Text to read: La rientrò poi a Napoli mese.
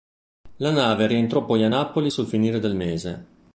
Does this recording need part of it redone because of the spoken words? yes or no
yes